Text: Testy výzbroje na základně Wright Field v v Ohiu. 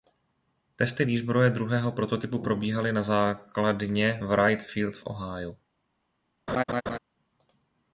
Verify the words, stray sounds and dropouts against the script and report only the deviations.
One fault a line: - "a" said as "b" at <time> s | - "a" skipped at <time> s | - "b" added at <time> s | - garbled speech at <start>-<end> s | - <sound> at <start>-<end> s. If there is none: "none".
- "druhého prototypu probíhaly" added at 1.5 s
- "v" skipped at 5.1 s
- laugh at 6.5-7.0 s